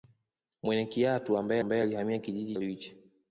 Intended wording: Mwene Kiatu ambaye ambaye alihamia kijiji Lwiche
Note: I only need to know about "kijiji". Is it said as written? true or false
true